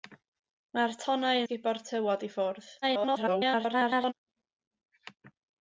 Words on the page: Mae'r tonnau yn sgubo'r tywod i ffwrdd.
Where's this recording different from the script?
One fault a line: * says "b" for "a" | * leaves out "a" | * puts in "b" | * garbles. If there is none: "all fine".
* leaves out "yn"
* garbles